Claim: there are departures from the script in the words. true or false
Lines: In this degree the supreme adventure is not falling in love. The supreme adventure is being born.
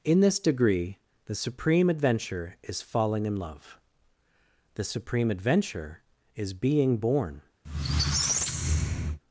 true